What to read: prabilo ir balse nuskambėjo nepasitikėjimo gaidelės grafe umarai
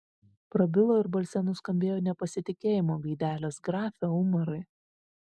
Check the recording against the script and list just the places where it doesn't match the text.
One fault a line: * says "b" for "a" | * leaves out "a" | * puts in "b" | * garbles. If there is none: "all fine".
all fine